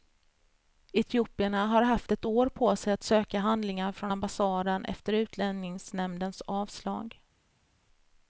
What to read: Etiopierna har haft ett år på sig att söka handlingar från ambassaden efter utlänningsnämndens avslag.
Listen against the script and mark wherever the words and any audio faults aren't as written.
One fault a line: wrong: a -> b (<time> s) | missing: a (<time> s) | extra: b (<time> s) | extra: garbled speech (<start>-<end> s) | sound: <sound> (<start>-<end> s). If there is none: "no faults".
no faults